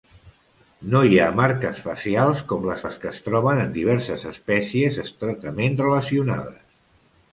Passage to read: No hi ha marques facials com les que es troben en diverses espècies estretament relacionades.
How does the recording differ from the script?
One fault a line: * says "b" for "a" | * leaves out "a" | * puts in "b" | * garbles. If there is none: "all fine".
* puts in "les"